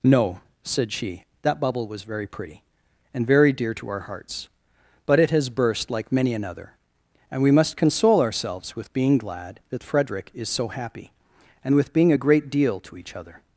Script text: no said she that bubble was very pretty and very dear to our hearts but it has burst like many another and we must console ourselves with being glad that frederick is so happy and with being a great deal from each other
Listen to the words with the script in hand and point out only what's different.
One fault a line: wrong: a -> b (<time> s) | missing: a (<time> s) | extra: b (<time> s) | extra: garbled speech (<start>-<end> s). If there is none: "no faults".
wrong: from -> to (12.8 s)